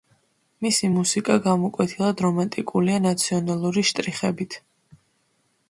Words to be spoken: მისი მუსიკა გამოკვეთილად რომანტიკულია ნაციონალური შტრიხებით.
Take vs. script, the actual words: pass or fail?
pass